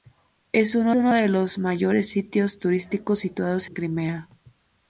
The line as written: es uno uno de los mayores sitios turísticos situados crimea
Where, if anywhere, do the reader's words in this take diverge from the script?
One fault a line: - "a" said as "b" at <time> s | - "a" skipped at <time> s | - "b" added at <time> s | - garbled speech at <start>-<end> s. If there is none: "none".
none